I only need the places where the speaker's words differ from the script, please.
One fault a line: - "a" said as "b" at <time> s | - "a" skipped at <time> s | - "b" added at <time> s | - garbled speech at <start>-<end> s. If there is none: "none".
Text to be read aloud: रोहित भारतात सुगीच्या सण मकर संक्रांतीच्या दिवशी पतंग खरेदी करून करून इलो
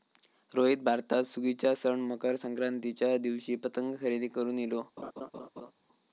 - "करून" skipped at 4.6 s